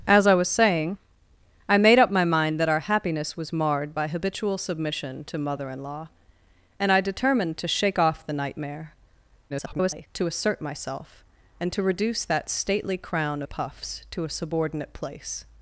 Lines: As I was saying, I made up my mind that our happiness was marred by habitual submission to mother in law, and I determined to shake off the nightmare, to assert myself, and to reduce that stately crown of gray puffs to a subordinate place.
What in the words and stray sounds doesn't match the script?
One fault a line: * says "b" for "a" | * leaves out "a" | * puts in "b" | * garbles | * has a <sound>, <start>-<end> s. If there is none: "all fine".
* garbles
* leaves out "of gray"